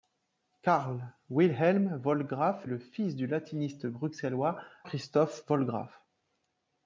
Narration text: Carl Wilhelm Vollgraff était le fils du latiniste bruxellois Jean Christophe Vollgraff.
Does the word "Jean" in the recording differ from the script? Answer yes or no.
yes